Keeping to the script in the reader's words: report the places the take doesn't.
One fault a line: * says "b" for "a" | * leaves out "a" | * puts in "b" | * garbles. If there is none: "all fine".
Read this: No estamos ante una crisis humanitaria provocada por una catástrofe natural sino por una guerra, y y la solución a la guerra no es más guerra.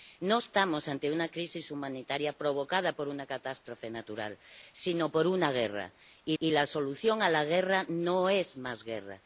all fine